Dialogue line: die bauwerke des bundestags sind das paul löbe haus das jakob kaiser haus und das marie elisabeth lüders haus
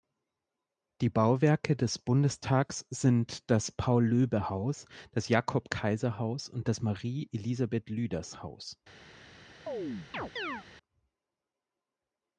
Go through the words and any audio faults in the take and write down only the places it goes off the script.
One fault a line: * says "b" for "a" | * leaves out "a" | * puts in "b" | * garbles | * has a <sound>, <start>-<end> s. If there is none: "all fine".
* has a chirp, 9.7-10.7 s